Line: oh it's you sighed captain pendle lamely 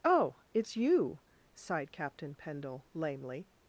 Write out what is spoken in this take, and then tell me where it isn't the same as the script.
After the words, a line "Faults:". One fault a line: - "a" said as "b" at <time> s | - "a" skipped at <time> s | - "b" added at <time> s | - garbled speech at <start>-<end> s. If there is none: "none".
oh it's you sighed captain pendle lamely
Faults:
none